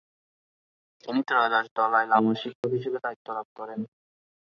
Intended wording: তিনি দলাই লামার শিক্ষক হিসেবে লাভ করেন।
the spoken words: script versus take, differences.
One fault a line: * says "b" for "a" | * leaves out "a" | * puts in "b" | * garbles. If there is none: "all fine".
* puts in "ত্রয়োদশ"
* puts in "দায়িত্ব"